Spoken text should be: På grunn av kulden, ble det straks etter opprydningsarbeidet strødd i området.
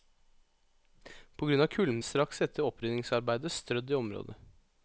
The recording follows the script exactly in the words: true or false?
false